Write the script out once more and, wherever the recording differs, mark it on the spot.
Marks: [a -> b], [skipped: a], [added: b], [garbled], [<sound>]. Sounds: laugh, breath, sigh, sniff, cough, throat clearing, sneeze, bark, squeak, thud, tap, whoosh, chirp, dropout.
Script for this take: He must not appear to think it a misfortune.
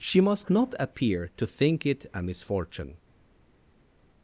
[He -> She] must not appear to think it a misfortune.